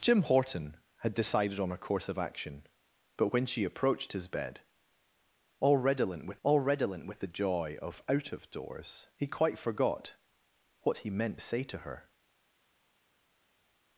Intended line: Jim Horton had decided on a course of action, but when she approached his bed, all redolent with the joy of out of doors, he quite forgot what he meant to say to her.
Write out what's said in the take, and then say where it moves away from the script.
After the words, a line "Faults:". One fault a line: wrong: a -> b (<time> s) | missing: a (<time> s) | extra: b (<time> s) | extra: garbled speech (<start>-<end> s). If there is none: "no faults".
Jim Horton had decided on a course of action, but when she approached his bed, all redolent with all redolent with the joy of out of doors, he quite forgot what he meant say to her.
Faults:
extra: all redolent with (6.4 s)
missing: to (11.4 s)